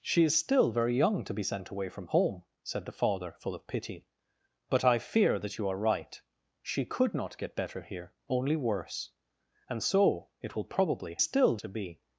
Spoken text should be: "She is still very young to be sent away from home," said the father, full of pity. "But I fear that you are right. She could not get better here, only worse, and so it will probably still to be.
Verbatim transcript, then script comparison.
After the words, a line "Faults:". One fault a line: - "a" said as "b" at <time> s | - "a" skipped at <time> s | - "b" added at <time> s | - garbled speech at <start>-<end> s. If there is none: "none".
"She is still very young to be sent away from home," said the father, full of pity. "But I fear that you are right. She could not get better here, only worse, and so it will probably still to be.
Faults:
none